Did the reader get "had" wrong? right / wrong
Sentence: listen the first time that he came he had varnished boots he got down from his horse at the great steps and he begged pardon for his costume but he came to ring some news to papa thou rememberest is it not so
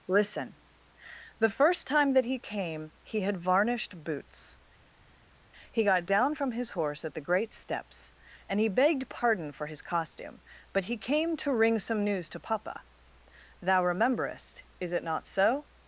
right